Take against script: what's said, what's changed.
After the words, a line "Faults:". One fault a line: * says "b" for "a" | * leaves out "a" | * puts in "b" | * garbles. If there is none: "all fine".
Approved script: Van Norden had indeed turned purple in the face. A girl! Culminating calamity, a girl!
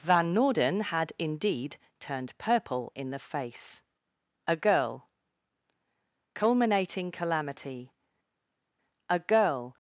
Van Norden had indeed turned purple in the face. A girl! Culminating calamity, a girl!
Faults:
all fine